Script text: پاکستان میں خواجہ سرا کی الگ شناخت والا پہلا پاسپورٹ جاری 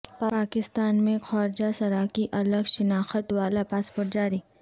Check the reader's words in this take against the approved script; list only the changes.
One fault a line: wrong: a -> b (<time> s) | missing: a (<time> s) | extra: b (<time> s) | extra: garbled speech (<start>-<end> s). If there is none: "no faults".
missing: پہلا (3.6 s)